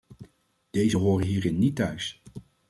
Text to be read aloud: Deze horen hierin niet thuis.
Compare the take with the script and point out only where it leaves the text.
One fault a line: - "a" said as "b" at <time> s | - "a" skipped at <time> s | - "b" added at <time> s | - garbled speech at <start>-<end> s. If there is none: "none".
none